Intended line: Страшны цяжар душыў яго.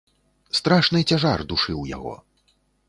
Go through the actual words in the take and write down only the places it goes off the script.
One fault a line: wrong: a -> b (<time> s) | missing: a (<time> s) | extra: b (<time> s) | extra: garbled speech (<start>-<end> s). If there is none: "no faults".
no faults